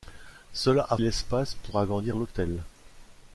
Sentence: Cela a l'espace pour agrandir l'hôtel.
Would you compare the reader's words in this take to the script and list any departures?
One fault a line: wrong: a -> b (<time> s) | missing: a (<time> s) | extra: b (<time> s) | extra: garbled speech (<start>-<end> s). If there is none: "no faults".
no faults